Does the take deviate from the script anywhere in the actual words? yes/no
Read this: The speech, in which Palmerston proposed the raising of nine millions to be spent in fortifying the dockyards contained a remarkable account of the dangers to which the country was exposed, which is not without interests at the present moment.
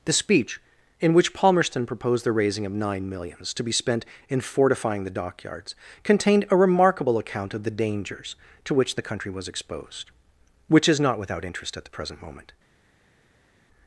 yes